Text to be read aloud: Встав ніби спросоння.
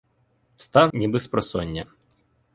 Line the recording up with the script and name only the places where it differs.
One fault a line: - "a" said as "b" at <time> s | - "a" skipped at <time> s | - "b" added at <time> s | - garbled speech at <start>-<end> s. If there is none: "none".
none